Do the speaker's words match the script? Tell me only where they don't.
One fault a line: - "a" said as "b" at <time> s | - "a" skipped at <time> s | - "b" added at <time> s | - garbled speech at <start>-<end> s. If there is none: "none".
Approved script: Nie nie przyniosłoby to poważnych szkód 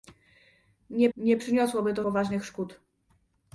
none